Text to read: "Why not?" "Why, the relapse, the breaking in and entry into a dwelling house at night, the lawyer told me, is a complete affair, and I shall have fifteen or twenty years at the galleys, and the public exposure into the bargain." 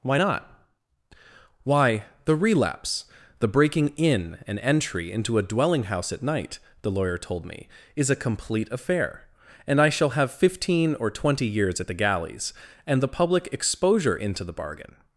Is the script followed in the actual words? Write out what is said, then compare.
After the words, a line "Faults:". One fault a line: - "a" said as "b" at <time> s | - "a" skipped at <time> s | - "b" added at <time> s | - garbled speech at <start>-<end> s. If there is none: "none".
"Why not?" "Why, the relapse, the breaking in and entry into a dwelling house at night, the lawyer told me, is a complete affair, and I shall have fifteen or twenty years at the galleys, and the public exposure into the bargain."
Faults:
none